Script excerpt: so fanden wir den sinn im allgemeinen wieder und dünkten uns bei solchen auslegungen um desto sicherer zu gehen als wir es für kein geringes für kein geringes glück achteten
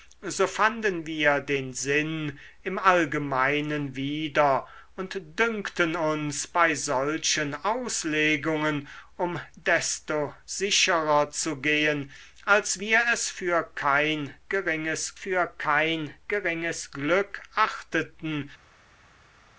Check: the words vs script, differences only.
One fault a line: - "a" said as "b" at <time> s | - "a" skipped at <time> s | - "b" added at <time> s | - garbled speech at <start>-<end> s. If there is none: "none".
none